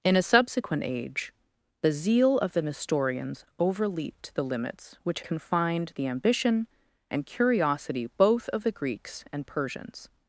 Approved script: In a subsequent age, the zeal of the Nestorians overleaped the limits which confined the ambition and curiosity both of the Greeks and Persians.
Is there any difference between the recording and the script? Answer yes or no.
no